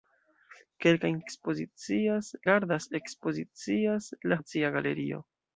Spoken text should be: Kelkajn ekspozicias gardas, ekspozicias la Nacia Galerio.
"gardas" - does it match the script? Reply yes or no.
yes